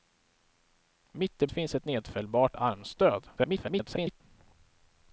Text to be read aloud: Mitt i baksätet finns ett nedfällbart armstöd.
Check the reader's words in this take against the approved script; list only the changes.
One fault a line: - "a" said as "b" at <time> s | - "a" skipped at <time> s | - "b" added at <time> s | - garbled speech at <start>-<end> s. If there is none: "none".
- "baksätet" skipped at 1.5 s
- garbled speech at 3.4-4.2 s